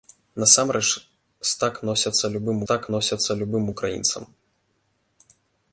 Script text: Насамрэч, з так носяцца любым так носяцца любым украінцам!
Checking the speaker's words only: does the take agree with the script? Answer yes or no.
yes